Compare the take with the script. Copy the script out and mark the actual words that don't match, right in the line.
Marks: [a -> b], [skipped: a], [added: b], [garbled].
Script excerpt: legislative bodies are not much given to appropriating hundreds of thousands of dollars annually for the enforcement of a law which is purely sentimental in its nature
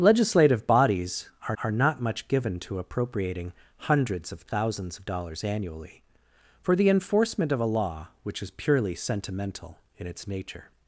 legislative bodies are [added: are] not much given to appropriating hundreds of thousands of dollars annually for the enforcement of a law which is purely sentimental in its nature